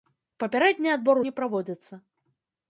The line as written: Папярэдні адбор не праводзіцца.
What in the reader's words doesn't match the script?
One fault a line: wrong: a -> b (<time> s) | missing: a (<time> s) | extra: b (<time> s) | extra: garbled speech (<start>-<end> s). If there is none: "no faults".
no faults